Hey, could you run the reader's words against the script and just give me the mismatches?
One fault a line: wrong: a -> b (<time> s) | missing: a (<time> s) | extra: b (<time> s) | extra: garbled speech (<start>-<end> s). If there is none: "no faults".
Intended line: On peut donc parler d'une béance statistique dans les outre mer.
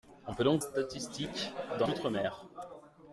missing: parler d'une béance (0.6 s)
missing: les (1.9 s)